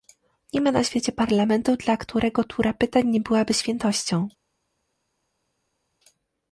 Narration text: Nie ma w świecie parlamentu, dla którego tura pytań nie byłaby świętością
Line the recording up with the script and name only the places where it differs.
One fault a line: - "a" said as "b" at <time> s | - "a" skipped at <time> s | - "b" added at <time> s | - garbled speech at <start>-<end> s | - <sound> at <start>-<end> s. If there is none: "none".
- "w" said as "na" at 0.7 s